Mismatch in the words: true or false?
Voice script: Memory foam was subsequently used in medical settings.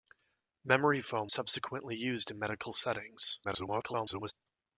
true